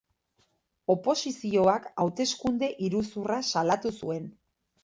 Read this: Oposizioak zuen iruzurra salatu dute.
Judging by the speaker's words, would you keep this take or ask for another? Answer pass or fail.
fail